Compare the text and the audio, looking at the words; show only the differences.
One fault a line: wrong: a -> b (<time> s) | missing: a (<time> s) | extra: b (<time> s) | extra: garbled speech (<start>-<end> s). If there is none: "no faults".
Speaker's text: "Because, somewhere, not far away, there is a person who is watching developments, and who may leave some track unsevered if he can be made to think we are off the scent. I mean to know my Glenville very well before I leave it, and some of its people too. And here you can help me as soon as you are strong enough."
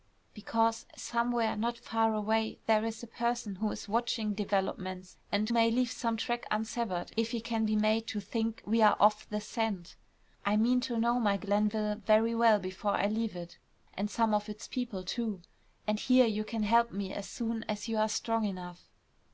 missing: who (5.5 s)